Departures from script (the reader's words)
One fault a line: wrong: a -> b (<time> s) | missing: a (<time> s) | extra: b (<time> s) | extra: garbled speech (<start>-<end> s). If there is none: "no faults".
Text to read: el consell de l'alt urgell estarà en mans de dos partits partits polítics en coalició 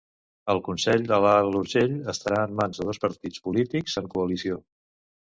missing: partits (3.4 s)